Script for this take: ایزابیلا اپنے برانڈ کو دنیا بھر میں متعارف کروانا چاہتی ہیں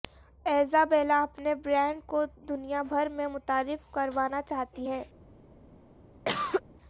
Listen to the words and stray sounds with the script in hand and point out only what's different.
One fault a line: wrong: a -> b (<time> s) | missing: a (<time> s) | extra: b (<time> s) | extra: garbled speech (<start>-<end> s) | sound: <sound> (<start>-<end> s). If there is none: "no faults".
sound: cough (6.3-6.6 s)